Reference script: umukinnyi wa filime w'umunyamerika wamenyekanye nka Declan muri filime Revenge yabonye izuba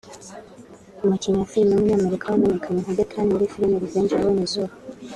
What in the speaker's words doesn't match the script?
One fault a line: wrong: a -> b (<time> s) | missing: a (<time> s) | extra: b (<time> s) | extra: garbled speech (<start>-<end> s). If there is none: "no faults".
no faults